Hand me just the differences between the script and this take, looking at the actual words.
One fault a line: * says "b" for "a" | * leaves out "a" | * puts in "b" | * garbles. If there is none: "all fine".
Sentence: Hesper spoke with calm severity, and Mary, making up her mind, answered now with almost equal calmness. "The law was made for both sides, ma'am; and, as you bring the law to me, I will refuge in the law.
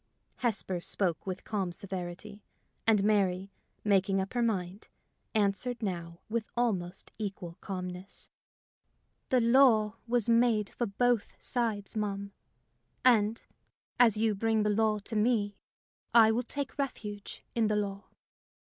* puts in "take"